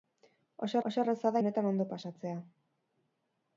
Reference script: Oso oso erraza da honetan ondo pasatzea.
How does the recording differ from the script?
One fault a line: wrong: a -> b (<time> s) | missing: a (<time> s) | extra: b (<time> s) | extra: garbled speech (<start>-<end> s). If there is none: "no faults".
no faults